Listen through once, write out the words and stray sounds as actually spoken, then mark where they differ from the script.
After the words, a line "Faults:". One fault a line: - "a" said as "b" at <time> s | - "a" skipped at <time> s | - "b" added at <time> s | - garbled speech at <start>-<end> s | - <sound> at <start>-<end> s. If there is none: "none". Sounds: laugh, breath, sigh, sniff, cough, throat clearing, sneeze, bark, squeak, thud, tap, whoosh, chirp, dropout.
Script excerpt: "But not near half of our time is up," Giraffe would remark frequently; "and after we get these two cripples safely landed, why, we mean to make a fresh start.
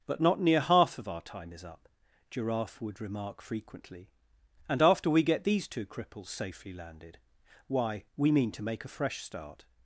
"But not near half of our time is up," Giraffe would remark frequently; "and after we get these two cripples safely landed, why, we mean to make a fresh start.
Faults:
none